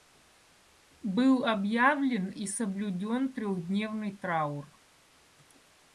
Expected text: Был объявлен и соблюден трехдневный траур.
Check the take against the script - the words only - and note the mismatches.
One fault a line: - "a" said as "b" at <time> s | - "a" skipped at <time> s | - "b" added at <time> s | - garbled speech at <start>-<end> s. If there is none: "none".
none